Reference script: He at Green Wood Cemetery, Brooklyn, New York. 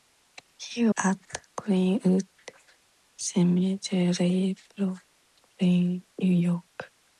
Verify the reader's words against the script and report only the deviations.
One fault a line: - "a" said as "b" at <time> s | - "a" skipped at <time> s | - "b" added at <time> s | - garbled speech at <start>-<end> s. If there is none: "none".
none